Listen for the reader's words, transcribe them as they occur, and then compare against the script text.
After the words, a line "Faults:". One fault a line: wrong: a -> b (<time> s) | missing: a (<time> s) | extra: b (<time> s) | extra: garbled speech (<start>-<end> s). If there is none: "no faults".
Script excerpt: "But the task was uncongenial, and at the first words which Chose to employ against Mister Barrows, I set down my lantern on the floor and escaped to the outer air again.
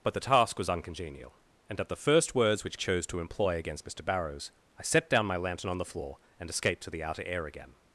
"But the task was uncongenial, and at the first words which Chose to employ against Mister Barrows, I set down my lantern on the floor and escaped to the outer air again.
Faults:
no faults